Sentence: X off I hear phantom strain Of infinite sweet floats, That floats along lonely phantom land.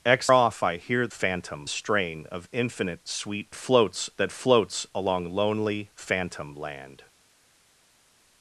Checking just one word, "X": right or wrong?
right